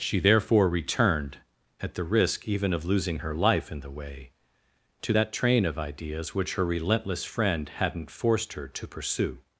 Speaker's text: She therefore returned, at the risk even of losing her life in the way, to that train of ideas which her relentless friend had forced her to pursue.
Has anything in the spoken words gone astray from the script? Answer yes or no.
yes